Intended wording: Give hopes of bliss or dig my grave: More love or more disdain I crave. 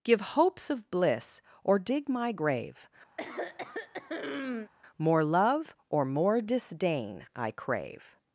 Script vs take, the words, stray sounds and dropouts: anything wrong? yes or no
yes